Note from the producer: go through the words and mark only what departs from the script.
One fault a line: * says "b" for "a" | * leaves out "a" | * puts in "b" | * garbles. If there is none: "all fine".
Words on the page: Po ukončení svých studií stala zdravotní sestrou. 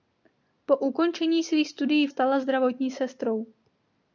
all fine